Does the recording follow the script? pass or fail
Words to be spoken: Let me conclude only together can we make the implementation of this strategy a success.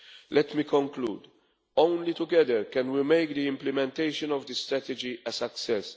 pass